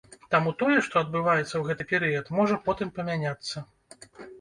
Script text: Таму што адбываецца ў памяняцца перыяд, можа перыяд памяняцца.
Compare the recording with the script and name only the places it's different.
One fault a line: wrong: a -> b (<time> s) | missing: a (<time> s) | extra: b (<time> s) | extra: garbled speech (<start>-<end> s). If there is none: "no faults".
extra: тое (0.6 s)
wrong: памяняцца -> гэты (1.7 s)
wrong: перыяд -> потым (2.7 s)